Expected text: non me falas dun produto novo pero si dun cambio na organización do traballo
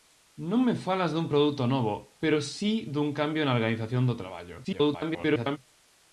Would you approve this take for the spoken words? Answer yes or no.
no